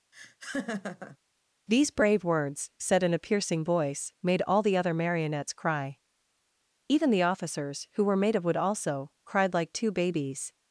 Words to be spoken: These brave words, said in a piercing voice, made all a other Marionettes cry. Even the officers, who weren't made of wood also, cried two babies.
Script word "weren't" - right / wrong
wrong